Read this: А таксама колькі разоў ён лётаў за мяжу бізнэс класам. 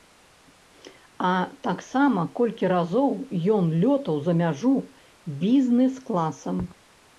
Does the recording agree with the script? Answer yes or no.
yes